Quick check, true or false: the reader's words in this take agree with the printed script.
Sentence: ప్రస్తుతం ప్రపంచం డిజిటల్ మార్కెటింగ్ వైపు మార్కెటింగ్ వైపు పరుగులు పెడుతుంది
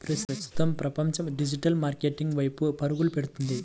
false